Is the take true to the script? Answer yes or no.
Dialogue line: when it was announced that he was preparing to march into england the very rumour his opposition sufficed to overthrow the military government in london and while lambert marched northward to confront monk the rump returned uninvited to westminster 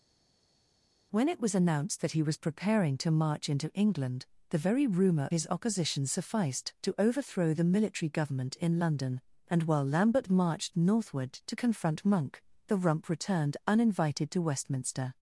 yes